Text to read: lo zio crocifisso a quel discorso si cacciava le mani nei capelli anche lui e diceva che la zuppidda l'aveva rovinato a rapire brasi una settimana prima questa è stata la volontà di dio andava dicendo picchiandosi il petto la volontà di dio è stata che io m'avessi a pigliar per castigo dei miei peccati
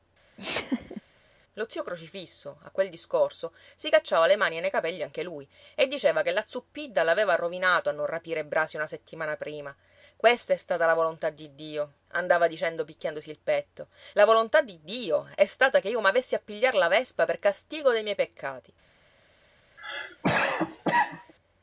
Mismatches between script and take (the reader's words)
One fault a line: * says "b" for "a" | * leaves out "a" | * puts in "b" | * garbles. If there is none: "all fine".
* puts in "non"
* puts in "la vespa"